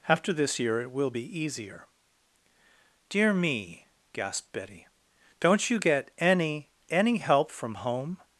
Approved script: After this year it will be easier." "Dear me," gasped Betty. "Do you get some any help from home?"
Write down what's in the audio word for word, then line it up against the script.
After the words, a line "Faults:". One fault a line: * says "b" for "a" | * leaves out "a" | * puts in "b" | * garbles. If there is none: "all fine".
After this year it will be easier." "Dear me," gasped Betty. "Don't you get any any help from home?"
Faults:
* says "Don't" for "Do"
* says "any" for "some"